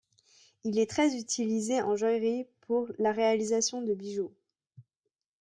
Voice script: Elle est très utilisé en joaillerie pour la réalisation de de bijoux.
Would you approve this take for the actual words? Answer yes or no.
no